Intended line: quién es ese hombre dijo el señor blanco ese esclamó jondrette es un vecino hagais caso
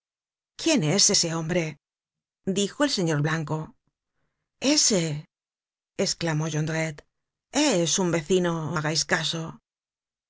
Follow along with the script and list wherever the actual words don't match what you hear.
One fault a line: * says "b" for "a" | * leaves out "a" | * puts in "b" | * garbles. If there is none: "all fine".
all fine